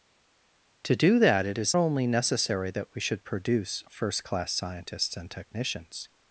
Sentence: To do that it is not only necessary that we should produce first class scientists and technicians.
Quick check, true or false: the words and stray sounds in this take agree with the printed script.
false